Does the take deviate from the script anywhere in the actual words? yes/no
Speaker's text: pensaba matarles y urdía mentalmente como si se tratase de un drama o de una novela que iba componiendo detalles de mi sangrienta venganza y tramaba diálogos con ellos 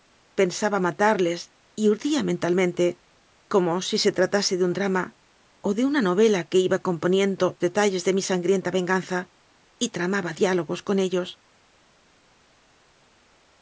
no